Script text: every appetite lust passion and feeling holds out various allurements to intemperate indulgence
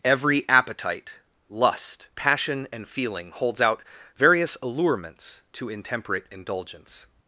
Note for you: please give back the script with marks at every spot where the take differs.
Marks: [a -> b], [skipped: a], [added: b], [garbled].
every appetite lust passion and feeling holds out various allurements to intemperate indulgence